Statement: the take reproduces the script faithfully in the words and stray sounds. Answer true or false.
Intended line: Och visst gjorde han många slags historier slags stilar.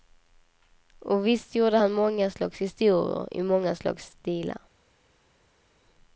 false